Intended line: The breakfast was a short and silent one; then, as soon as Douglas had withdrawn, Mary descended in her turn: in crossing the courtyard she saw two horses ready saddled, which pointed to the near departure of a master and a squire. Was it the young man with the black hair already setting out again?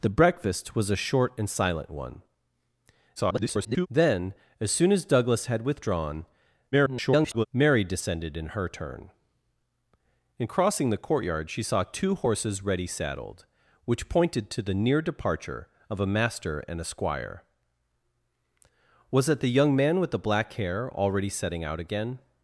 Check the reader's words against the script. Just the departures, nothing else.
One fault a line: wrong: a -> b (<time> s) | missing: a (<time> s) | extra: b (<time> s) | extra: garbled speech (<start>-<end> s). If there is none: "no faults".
extra: garbled speech (3.2-3.9 s)
extra: garbled speech (6.7-7.5 s)